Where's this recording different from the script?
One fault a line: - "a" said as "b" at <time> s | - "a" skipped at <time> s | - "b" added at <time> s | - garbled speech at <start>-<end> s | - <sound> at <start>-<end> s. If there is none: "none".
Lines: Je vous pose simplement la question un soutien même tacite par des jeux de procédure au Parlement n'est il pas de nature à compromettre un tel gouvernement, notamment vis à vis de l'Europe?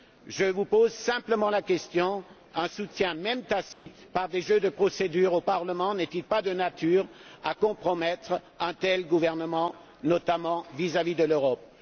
- dropout at 3.7-3.9 s